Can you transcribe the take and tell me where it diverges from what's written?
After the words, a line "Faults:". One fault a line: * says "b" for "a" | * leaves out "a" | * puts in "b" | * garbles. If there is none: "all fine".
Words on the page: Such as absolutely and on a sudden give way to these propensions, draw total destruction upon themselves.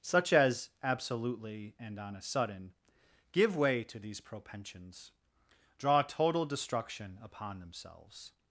Such as absolutely and on a sudden give way to these propensions, draw total destruction upon themselves.
Faults:
all fine